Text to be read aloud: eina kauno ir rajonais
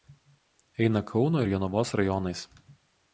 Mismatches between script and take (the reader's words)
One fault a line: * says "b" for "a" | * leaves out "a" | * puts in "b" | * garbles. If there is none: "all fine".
* puts in "jonavos"